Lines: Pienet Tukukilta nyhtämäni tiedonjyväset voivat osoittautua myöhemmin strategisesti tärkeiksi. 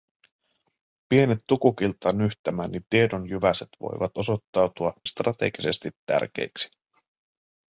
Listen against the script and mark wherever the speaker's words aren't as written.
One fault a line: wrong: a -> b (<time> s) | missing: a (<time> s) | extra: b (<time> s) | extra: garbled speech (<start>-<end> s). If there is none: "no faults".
missing: myöhemmin (4.9 s)